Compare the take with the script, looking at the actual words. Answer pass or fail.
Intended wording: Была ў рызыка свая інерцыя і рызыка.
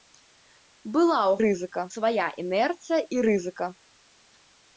pass